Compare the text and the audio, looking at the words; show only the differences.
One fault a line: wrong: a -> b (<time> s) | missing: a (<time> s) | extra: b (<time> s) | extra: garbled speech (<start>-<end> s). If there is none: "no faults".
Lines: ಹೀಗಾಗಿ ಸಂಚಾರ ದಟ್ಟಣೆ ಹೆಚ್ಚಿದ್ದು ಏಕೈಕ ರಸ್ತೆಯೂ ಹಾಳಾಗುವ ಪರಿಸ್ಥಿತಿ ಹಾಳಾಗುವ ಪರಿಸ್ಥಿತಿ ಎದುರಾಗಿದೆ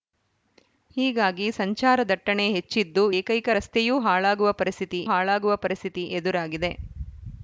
no faults